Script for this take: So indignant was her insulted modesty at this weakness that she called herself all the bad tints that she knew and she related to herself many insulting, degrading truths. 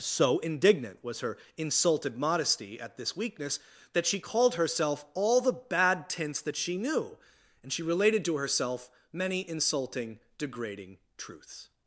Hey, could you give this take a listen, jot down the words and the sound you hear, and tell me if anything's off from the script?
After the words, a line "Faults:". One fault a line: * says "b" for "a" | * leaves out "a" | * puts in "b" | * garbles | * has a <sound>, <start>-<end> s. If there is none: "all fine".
So indignant was her insulted modesty at this weakness that she called herself all the bad tints that she knew and she related to herself many insulting, degrading truths.
Faults:
all fine